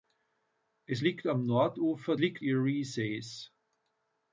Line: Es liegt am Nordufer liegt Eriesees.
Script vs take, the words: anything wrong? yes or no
no